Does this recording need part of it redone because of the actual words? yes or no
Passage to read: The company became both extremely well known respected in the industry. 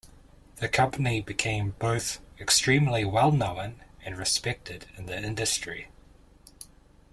yes